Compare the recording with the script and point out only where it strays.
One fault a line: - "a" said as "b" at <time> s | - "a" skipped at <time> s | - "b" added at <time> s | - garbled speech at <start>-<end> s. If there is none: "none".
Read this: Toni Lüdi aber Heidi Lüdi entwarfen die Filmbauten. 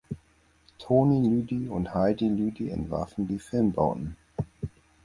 - "aber" said as "und" at 1.7 s